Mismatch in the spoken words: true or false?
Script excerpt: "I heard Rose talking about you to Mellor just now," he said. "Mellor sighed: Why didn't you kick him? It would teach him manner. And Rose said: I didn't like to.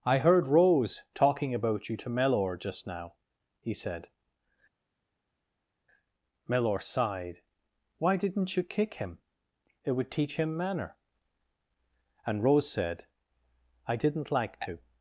false